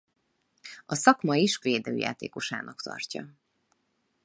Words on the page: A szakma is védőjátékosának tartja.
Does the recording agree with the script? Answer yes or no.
yes